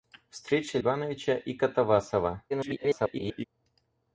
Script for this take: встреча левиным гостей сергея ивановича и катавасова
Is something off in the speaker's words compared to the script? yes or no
yes